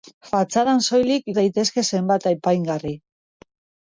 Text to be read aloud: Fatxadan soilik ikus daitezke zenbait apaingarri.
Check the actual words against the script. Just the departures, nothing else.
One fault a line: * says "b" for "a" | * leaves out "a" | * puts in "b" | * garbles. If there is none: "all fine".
* leaves out "ikus"